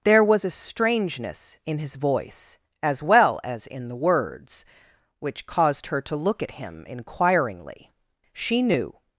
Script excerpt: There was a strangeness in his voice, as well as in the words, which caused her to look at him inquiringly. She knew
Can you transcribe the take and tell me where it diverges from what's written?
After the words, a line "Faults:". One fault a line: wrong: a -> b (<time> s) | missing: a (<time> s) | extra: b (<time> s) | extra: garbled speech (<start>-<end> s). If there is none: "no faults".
There was a strangeness in his voice, as well as in the words, which caused her to look at him inquiringly. She knew
Faults:
no faults